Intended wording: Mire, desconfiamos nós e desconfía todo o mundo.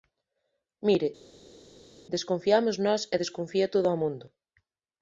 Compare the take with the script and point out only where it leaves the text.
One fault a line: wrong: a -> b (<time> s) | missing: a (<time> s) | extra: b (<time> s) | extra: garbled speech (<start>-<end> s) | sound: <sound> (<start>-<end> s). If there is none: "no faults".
no faults